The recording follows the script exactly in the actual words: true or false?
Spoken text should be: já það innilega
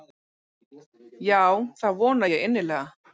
false